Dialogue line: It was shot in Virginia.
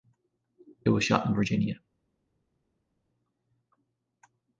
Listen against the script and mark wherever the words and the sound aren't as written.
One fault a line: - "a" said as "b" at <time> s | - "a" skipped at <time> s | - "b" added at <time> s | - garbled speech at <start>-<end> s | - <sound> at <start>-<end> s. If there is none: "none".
none